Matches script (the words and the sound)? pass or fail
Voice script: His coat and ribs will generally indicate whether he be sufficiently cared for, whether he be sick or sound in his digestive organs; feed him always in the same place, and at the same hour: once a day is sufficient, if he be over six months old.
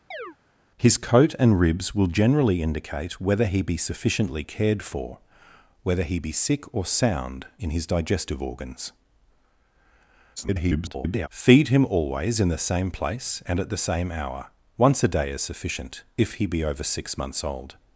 fail